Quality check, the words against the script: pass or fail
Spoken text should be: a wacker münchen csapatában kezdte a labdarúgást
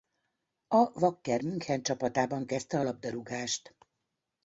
pass